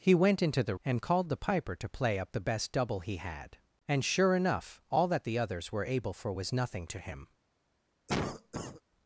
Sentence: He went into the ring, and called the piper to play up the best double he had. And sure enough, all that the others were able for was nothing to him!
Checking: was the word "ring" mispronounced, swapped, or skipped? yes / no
yes